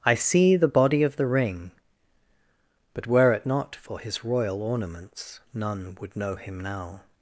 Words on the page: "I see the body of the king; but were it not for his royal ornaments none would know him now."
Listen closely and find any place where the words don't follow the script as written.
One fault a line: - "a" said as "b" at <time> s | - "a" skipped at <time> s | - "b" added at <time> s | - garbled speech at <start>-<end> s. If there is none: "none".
- "king" said as "ring" at 1.3 s